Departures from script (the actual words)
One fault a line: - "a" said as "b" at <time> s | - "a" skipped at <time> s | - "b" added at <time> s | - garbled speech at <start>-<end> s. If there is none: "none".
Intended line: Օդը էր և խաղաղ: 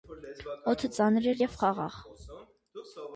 - "ծանր" added at 0.9 s